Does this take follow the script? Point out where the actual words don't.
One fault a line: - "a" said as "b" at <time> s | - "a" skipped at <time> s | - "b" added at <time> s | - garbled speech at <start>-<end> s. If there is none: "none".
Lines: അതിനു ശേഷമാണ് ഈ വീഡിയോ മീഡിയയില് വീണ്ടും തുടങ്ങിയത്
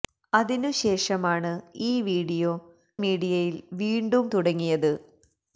none